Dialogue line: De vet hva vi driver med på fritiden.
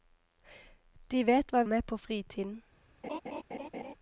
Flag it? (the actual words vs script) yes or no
yes